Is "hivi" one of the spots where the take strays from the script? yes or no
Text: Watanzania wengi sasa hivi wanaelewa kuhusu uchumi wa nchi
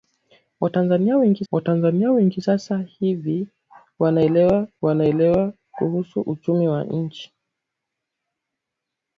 no